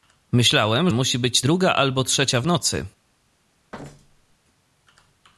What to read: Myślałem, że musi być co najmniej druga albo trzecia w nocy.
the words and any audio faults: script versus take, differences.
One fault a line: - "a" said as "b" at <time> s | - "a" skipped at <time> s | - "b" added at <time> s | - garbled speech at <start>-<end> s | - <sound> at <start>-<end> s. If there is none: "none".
- "że" skipped at 0.9 s
- "co najmniej" skipped at 1.4 s
- thud at 3.7-4.4 s